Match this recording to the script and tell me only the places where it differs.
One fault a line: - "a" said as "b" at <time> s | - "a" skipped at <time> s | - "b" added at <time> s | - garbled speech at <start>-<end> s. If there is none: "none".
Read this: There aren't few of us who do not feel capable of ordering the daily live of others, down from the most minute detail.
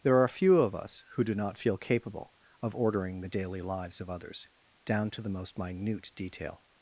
- "aren't" said as "are" at 0.2 s
- "live" said as "lives" at 3.6 s
- "from" said as "to" at 5.1 s